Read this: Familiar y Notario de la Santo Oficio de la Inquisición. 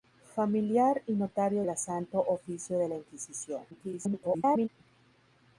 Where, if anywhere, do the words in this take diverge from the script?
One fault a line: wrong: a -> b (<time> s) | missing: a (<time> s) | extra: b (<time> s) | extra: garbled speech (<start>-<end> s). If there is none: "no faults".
missing: de (1.6 s)
extra: garbled speech (3.7-4.7 s)